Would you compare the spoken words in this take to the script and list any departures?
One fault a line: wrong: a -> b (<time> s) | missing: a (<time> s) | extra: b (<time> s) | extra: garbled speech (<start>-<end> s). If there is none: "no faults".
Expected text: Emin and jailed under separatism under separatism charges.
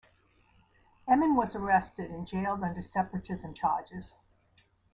extra: was arrested (1.4 s)
missing: under separatism (3.5 s)